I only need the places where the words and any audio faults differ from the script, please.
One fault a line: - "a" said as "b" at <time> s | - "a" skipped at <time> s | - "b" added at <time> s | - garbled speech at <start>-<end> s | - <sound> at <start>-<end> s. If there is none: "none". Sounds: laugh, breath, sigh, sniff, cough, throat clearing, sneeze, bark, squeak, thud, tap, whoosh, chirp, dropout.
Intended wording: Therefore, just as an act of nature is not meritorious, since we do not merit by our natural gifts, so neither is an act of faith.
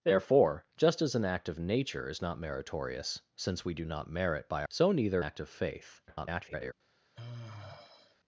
- "our natural gifts" skipped at 4.6 s
- "is an" skipped at 5.2 s
- garbled speech at 6.1-6.7 s
- sigh at 7.1-8.2 s